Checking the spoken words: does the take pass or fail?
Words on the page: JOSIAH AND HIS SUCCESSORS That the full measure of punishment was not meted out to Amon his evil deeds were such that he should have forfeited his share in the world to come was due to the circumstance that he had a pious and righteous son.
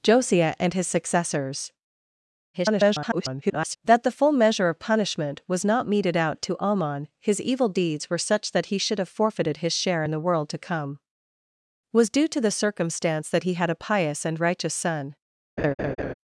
fail